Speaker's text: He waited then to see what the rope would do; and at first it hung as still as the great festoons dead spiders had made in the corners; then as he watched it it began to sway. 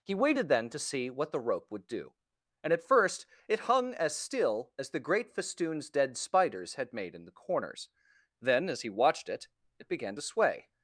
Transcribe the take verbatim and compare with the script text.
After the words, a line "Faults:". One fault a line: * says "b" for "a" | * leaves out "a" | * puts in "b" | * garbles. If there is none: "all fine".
He waited then to see what the rope would do; and at first it hung as still as the great festoons dead spiders had made in the corners; then as he watched it it began to sway.
Faults:
all fine